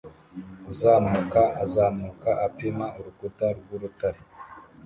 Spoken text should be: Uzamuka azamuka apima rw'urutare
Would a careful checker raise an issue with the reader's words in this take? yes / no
yes